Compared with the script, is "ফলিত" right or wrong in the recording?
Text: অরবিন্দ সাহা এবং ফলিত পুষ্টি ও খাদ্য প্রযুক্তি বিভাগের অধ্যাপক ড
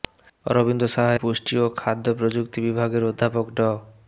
wrong